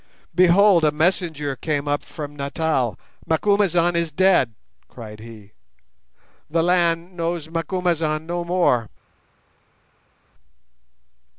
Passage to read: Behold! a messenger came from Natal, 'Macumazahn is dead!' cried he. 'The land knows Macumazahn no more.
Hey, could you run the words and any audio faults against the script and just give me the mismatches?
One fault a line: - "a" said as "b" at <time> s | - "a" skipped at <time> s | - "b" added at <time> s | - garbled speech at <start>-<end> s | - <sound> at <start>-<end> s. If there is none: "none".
- "up" added at 1.9 s